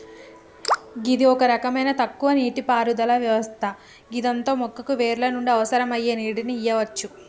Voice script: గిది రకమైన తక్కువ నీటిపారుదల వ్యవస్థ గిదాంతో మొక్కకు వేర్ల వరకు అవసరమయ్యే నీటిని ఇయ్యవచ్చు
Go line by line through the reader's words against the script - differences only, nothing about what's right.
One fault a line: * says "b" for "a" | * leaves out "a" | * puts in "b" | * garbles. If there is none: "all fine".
* puts in "ఒక"
* says "నుండి" for "వరకు"